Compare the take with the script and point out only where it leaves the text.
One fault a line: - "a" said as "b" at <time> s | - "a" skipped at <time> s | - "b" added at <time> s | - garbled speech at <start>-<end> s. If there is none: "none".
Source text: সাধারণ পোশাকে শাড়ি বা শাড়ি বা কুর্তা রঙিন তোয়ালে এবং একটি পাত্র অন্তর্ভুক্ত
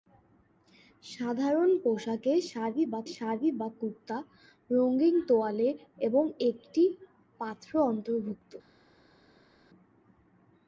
none